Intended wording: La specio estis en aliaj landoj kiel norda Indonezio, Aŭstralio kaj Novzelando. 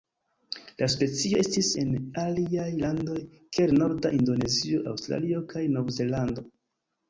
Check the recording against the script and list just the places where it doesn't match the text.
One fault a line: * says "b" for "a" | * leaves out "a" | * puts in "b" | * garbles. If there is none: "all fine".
all fine